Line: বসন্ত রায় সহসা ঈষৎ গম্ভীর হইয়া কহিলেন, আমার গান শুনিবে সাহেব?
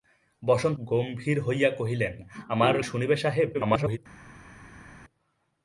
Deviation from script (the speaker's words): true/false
true